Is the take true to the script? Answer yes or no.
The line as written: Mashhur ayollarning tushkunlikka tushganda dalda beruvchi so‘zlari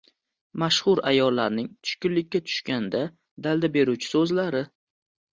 yes